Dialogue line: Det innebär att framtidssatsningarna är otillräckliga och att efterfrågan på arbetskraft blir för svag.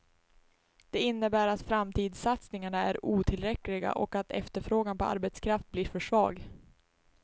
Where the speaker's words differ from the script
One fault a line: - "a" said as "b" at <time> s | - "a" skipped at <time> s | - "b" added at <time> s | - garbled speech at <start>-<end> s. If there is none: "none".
none